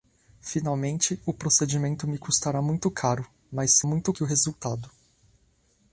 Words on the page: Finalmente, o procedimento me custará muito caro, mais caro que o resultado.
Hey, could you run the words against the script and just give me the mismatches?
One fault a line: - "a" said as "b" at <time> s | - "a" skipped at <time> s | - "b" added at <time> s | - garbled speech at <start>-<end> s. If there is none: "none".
- "caro" said as "muito" at 3.8 s